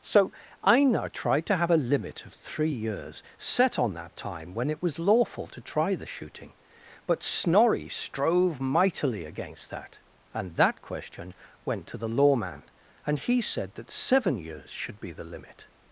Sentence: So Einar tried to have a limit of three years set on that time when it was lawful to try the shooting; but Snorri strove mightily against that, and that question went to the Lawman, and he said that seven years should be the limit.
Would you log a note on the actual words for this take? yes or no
no